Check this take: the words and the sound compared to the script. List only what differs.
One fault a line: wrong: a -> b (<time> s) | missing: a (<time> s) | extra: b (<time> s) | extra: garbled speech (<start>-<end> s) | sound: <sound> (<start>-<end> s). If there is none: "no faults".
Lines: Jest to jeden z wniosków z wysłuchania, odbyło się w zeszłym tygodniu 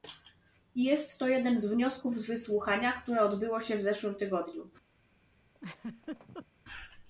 extra: które (2.9 s)
sound: laugh (5.5-6.5 s)